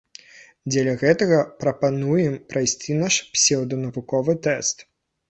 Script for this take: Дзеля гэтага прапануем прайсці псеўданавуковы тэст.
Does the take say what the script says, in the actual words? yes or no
no